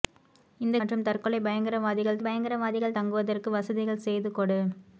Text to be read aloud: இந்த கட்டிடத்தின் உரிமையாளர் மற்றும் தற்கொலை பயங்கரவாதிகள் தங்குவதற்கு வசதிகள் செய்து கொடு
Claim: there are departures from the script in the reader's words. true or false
true